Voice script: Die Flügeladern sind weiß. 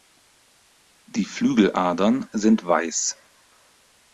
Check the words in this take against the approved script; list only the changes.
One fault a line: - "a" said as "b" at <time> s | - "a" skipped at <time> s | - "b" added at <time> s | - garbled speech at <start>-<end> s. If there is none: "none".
none